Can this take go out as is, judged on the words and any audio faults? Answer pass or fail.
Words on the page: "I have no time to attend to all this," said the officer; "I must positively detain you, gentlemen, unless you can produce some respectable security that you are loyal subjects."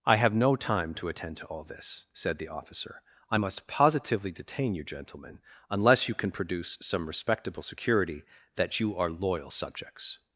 pass